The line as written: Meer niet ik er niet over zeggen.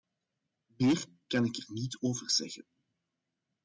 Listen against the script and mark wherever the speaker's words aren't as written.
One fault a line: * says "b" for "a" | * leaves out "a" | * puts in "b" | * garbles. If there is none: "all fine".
* says "kan" for "niet"